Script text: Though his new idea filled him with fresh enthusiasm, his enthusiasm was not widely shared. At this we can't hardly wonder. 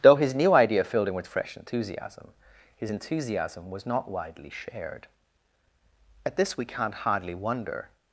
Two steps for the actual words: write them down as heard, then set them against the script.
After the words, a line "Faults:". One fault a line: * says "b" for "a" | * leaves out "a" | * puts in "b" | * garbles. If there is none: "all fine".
Though his new idea filled him with fresh enthusiasm, his enthusiasm was not widely shared. At this we can't hardly wonder.
Faults:
all fine